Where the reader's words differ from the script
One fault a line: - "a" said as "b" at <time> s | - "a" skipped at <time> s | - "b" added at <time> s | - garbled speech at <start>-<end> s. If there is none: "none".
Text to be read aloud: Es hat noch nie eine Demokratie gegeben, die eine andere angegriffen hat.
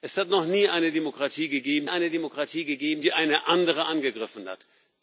- "eine Demokratie gegeben" added at 1.9 s